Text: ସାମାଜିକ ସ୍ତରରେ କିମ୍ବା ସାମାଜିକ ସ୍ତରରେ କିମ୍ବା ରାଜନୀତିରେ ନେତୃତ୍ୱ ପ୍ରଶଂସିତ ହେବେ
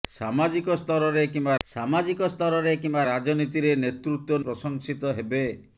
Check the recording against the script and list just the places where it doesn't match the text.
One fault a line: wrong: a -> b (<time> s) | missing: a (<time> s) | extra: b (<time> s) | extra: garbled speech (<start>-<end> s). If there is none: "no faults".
no faults